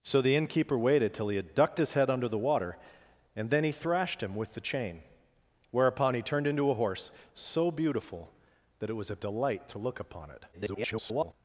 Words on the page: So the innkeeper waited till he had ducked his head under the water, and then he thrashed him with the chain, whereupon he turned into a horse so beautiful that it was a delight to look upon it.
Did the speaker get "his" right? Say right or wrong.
right